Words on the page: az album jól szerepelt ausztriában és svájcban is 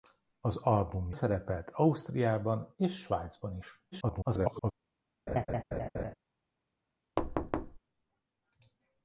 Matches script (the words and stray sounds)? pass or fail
fail